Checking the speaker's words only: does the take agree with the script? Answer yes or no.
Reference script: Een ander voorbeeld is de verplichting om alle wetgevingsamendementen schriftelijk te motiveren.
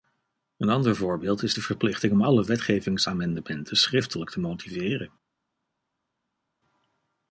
yes